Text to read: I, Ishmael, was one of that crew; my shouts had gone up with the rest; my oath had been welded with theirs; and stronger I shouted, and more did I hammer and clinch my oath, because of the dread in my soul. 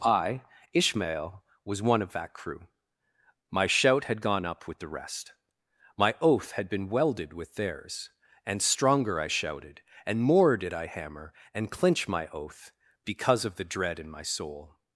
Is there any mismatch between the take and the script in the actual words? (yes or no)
yes